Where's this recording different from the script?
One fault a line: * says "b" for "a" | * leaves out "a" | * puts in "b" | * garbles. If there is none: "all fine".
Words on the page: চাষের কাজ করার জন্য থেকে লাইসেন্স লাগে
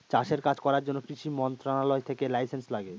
* puts in "কৃষি মন্ত্রণালয়"